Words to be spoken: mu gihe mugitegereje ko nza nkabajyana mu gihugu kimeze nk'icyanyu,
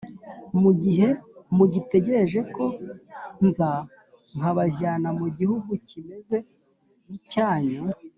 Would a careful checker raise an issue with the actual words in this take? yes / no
no